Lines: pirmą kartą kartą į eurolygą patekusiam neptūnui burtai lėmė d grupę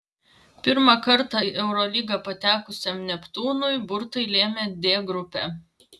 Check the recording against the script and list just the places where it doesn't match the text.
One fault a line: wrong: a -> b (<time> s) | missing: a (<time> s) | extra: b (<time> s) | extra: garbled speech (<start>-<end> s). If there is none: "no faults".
missing: kartą (1.4 s)